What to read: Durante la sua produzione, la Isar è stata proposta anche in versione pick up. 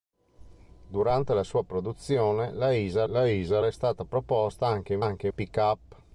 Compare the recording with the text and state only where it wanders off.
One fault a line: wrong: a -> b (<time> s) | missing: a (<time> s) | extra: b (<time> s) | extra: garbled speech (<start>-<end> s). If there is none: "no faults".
extra: la Isar (3.0 s)
wrong: versione -> anche (5.0 s)